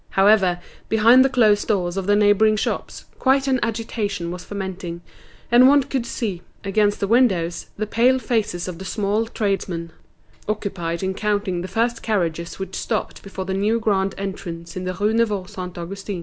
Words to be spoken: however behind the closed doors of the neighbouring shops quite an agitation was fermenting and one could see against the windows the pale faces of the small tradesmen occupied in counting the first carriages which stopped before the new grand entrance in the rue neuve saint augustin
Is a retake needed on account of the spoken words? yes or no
no